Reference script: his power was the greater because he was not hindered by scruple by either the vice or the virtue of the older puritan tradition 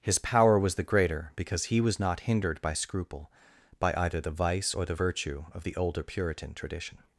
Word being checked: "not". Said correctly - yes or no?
yes